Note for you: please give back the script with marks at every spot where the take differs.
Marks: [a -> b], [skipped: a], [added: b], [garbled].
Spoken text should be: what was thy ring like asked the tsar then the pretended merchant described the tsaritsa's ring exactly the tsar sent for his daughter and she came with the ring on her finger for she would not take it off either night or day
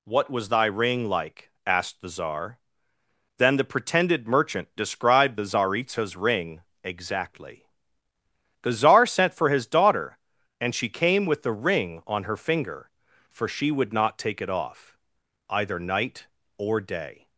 what was thy ring like asked the tsar then the pretended merchant described the tsaritsa's ring exactly the tsar sent for his daughter and she came with the ring on her finger for she would not take it off either night or day